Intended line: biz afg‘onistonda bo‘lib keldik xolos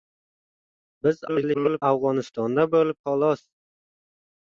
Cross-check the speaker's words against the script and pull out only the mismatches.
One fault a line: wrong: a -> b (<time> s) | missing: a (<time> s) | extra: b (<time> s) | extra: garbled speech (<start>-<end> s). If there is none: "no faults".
extra: garbled speech (1.3-1.8 s)
missing: keldik (3.0 s)